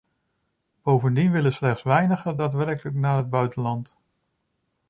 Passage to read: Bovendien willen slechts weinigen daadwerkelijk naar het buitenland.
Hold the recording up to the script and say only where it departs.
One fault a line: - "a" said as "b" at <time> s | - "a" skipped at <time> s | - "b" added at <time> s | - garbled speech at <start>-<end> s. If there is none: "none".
none